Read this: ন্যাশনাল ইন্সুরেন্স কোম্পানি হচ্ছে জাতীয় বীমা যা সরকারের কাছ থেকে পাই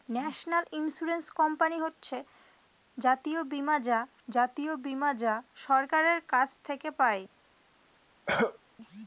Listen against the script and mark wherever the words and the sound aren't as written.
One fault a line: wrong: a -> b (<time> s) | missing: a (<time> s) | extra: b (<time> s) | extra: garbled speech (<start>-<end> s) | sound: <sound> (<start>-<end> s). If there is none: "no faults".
extra: জাতীয় বীমা যা (4.3 s)
sound: cough (8.3-8.6 s)